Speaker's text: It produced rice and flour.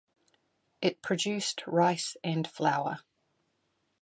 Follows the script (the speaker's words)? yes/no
yes